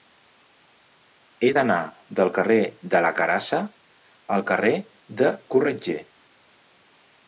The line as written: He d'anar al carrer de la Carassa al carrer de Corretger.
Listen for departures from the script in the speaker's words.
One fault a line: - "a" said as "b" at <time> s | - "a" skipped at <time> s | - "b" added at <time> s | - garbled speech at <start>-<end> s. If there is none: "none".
- "al" said as "del" at 2.2 s